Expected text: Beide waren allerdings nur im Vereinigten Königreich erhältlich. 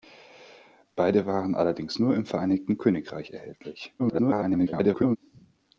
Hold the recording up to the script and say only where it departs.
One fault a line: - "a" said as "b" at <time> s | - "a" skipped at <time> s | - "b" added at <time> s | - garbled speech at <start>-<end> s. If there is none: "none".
- garbled speech at 4.0-5.2 s